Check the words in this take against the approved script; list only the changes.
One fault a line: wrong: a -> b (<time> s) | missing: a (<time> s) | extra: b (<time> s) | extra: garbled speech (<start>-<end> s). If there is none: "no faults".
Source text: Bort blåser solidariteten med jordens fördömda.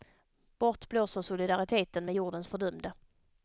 no faults